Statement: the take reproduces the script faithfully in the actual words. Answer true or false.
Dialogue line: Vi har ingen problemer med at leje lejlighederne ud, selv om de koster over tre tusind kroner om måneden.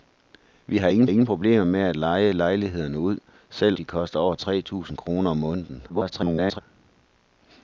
false